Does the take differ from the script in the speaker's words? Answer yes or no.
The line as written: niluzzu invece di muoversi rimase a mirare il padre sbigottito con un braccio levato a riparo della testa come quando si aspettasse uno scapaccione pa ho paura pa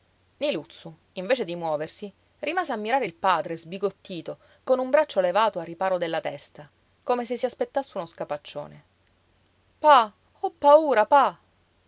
yes